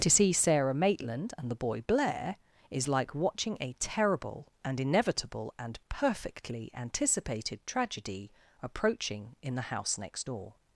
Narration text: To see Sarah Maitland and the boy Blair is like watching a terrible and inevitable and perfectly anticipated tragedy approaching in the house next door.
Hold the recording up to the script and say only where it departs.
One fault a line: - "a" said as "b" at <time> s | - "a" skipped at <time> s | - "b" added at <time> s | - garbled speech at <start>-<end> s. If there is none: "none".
none